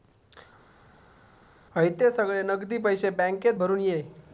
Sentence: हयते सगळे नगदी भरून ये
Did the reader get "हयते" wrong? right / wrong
right